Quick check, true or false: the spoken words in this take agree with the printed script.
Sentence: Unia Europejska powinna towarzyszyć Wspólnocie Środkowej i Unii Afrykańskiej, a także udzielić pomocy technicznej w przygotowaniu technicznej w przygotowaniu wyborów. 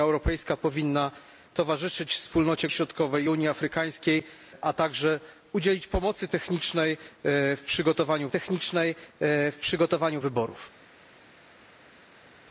true